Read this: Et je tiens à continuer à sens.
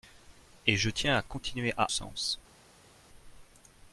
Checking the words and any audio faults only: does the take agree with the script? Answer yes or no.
yes